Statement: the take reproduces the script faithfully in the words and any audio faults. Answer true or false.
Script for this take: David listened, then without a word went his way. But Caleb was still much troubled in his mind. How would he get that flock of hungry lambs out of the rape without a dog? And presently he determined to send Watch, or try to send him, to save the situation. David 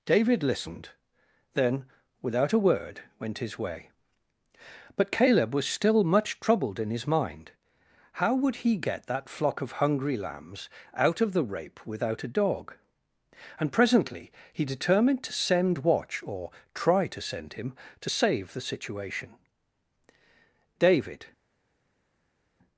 true